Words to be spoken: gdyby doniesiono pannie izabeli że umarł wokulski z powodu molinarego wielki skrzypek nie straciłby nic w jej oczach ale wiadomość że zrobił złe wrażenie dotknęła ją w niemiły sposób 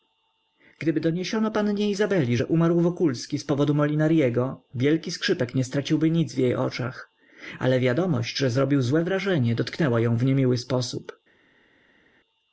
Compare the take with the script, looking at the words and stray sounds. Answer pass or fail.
pass